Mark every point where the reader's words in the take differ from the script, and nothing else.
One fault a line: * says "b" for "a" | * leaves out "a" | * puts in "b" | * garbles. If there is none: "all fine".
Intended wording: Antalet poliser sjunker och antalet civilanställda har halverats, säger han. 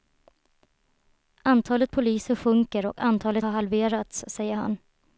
* leaves out "civilanställda"